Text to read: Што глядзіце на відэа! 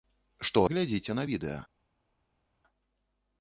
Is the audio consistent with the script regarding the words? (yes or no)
yes